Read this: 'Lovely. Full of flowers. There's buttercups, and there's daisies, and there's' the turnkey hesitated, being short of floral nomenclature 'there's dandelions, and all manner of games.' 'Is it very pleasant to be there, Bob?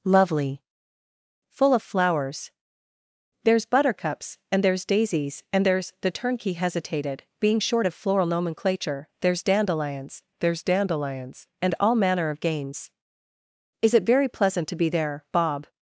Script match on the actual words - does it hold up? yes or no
no